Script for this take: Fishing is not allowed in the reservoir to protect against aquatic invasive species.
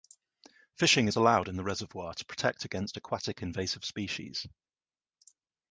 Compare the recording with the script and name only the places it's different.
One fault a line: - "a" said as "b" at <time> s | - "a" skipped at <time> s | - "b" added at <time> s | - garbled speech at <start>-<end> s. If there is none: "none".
- "not" skipped at 1.2 s